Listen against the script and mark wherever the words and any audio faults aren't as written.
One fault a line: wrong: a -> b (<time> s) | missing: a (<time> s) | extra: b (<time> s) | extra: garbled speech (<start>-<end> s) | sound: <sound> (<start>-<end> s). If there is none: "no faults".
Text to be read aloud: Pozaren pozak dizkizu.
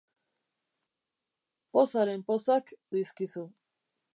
no faults